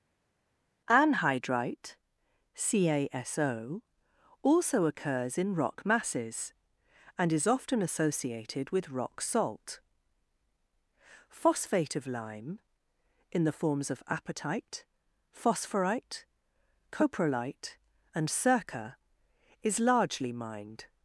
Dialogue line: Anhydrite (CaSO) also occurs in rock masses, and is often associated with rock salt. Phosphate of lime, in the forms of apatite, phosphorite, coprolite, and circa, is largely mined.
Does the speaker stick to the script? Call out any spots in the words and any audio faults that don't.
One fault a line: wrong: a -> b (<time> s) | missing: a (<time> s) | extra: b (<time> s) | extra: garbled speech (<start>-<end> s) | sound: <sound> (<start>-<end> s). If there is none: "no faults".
no faults